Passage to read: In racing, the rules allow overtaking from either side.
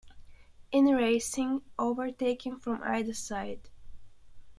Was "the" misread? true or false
true